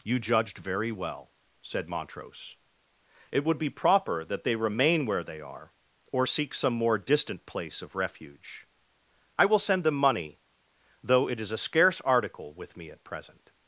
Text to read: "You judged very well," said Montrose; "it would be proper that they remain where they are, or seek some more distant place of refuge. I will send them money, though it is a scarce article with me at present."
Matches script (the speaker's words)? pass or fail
pass